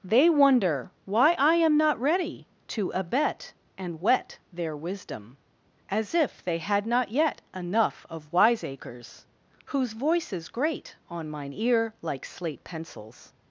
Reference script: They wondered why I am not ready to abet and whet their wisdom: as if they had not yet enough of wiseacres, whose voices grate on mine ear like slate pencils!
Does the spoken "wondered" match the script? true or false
false